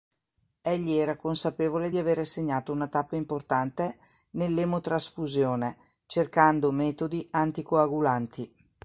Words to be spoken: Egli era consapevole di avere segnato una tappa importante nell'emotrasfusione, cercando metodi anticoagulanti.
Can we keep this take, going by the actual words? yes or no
yes